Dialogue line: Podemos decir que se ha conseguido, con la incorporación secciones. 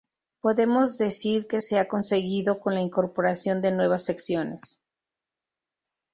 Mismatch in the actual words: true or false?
true